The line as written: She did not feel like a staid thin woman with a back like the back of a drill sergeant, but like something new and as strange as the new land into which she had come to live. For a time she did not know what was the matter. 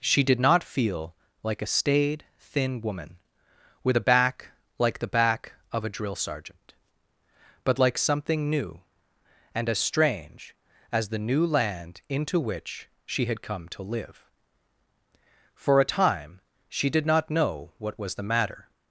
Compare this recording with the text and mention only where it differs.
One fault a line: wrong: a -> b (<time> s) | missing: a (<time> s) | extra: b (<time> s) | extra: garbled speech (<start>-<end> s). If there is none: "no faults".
no faults